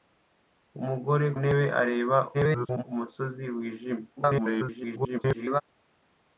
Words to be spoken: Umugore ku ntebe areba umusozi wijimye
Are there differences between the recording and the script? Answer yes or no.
yes